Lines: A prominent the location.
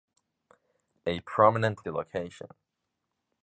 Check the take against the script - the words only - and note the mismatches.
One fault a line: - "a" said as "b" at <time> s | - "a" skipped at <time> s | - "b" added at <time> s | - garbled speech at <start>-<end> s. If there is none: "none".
none